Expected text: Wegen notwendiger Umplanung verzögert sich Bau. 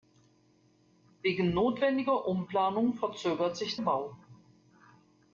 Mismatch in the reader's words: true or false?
false